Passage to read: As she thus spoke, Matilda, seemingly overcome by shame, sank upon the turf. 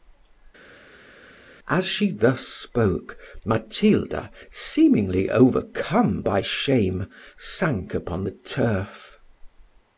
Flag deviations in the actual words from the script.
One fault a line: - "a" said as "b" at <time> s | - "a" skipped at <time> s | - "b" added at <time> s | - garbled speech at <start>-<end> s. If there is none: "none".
none